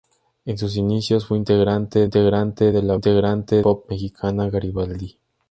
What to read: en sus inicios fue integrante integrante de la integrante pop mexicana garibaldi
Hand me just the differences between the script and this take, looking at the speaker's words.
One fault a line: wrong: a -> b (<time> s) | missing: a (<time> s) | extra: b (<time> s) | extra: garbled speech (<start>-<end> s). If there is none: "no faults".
no faults